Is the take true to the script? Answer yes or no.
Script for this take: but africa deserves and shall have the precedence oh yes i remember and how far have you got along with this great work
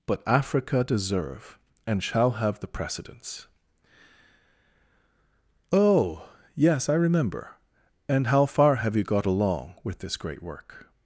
no